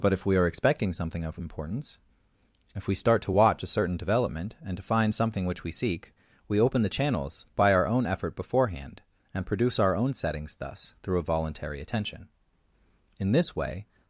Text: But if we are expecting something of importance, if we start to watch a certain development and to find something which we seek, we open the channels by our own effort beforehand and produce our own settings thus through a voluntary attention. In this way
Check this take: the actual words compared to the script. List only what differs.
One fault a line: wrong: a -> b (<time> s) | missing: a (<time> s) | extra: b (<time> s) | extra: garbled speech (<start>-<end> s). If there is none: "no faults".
no faults